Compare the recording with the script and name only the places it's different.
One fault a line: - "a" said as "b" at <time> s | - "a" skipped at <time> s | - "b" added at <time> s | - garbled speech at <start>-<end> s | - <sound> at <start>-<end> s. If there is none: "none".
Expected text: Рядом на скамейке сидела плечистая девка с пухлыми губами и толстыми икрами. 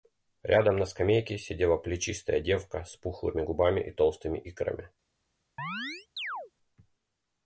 - chirp at 5.6-6.5 s